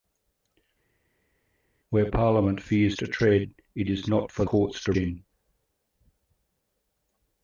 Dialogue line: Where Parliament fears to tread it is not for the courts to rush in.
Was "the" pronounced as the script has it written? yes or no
no